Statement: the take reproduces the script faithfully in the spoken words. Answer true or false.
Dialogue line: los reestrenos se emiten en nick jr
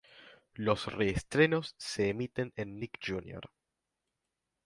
true